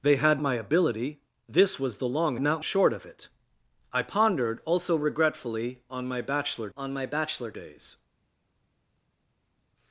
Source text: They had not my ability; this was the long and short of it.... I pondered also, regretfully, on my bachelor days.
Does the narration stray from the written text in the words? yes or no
yes